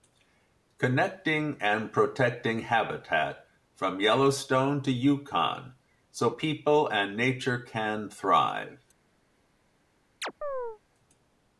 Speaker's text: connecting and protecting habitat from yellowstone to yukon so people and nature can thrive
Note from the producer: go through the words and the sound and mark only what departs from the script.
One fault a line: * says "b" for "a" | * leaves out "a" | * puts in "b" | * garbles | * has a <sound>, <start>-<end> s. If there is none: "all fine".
* has a chirp, 10.2-10.8 s